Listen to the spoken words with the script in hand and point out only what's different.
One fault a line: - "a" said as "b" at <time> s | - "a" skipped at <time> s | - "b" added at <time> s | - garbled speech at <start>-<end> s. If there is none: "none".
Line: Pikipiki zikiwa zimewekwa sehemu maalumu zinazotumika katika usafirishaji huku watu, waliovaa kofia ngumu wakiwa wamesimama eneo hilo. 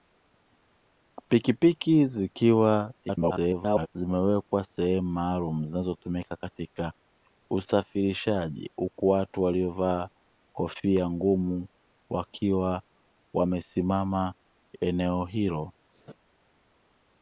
- garbled speech at 3.0-3.9 s